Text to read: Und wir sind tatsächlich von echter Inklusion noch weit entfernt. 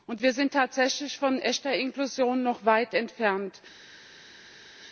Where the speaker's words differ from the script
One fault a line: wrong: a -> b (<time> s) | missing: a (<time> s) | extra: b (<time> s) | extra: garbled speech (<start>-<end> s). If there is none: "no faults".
no faults